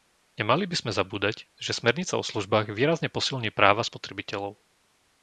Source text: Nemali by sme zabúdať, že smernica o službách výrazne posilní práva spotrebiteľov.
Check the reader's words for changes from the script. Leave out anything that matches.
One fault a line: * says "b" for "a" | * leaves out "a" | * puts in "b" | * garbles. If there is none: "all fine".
all fine